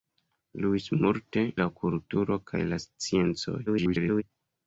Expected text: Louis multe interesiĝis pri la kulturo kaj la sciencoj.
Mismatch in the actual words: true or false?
true